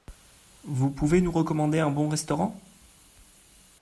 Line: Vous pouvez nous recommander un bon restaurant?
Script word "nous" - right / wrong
right